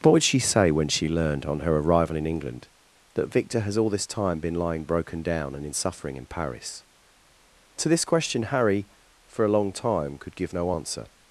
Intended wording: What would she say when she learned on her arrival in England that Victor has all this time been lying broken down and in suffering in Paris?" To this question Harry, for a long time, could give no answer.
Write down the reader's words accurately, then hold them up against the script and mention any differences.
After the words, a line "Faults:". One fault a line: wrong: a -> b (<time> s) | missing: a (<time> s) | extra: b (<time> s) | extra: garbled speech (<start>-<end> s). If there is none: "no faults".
What would she say when she learned on her arrival in England that Victor has all this time been lying broken down and in suffering in Paris?" To this question Harry, for a long time, could give no answer.
Faults:
no faults